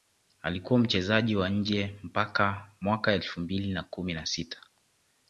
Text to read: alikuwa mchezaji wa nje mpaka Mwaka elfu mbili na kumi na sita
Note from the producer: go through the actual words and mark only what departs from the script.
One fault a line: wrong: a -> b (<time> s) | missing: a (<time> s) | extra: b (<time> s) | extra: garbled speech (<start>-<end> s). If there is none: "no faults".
no faults